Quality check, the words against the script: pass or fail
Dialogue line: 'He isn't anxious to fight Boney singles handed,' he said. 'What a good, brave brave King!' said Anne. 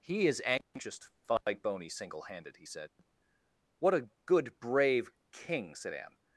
fail